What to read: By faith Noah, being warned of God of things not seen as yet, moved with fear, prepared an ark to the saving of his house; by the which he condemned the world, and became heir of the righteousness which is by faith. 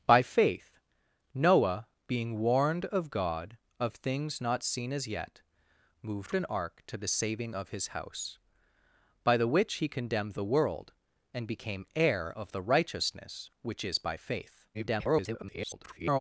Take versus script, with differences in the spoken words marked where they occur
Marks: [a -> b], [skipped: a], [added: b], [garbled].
By faith Noah, being warned of God of things not seen as yet, moved [skipped: with fear, prepared] an ark to the saving of his house; by the which he condemned the world, and became heir of the righteousness which is by faith. [garbled]